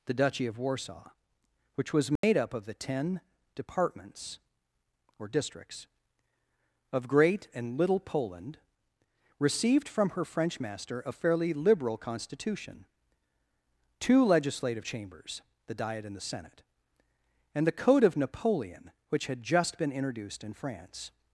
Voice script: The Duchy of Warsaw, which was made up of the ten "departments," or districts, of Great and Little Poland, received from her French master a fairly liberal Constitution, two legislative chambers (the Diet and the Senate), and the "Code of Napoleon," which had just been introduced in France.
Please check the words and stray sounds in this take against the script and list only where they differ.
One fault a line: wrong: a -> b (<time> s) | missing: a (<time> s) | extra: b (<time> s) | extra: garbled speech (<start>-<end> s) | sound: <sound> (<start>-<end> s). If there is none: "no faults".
sound: dropout (2.2-2.2 s)